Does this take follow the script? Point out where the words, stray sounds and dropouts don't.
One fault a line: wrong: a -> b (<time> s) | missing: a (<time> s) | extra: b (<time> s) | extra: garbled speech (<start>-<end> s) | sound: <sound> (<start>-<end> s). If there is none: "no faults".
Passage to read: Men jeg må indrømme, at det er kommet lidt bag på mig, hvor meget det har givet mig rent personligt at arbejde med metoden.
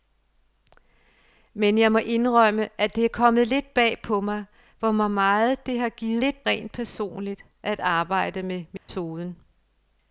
wrong: mig -> lidt (6.2 s)
sound: dropout (8.8-8.9 s)